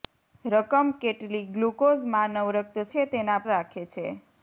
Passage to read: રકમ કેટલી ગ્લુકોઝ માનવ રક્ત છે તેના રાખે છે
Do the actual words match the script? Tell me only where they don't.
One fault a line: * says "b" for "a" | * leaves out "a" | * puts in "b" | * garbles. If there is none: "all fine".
all fine